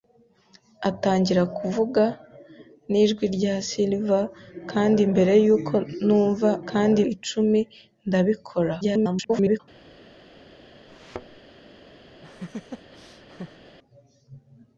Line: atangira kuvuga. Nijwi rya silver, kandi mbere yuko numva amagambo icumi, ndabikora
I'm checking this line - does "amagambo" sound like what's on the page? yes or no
no